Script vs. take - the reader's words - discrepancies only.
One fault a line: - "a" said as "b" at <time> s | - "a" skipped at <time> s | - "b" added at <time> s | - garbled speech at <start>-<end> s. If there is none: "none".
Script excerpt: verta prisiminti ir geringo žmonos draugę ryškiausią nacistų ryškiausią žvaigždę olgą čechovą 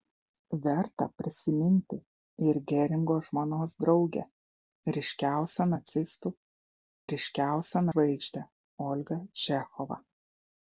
none